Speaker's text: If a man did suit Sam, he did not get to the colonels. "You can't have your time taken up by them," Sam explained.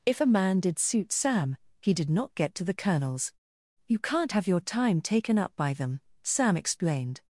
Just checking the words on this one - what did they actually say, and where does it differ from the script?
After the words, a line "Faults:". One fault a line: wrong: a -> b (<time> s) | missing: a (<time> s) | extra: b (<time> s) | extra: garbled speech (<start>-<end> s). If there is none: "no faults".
If a man did suit Sam, he did not get to the colonels. "You can't have your time taken up by them," Sam explained.
Faults:
no faults